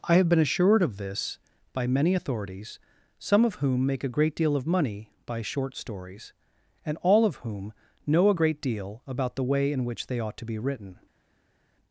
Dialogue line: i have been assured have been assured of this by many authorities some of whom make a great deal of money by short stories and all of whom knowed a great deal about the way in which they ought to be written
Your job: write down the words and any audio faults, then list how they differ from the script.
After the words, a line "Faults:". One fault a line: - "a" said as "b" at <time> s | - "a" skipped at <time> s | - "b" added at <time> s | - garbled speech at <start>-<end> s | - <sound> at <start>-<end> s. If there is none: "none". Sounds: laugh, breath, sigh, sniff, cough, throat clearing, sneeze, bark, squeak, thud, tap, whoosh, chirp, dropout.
i have been assured of this by many authorities some of whom make a great deal of money by short stories and all of whom know a great deal about the way in which they ought to be written
Faults:
- "have been assured" skipped at 0.8 s
- "knowed" said as "know" at 8.1 s